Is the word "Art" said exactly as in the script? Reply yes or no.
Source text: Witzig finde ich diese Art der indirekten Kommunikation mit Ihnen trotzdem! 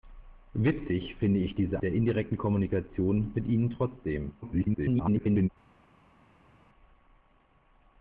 no